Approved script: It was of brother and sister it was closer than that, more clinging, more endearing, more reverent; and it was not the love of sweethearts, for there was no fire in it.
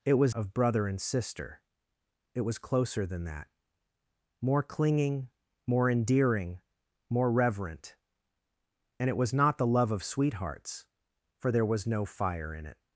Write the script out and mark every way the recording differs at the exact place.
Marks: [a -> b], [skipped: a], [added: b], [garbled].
It was of brother and sister it was closer than that, more clinging, more endearing, more reverent; and it was not the love of sweethearts, for there was no fire in it.